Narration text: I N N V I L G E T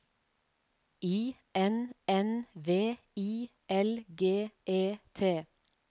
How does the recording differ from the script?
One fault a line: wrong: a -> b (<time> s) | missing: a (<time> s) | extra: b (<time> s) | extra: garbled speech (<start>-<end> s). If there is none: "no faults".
no faults